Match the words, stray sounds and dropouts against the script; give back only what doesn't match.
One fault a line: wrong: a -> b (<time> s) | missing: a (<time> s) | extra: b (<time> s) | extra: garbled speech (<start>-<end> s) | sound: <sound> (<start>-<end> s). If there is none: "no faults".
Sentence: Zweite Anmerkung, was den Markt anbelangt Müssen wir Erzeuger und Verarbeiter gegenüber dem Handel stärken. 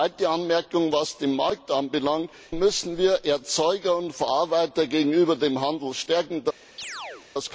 sound: chirp (6.8-7.3 s)